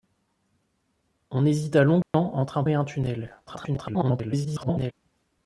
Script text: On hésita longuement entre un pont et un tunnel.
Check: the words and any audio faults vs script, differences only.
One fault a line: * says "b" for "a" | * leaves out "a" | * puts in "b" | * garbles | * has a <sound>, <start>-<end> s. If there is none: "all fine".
* has a dropout, 2.0-2.1 s
* leaves out "pont"
* garbles